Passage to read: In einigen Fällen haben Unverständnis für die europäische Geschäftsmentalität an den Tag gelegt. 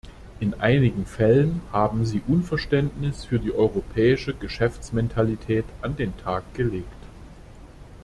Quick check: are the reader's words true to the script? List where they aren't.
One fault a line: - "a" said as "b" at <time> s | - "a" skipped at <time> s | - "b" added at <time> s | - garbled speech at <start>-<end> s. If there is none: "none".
- "sie" added at 2.1 s